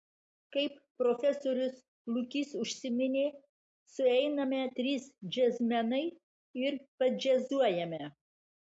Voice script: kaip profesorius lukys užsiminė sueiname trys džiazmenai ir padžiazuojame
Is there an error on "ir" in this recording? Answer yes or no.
no